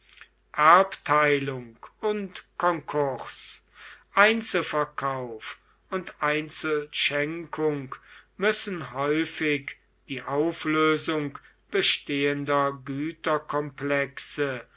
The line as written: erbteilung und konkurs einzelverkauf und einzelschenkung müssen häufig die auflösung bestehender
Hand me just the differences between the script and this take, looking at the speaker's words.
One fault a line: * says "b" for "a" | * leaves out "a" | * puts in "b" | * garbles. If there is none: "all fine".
all fine